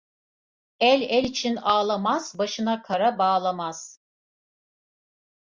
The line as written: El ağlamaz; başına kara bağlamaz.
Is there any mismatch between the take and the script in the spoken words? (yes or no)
yes